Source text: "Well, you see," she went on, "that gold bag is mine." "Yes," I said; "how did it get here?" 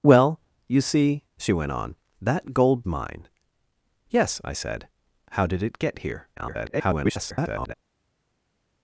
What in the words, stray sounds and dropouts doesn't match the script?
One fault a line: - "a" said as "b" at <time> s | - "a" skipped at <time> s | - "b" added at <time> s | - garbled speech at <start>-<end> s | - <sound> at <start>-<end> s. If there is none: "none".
- "bag is" skipped at 2.8 s
- garbled speech at 6.4-7.7 s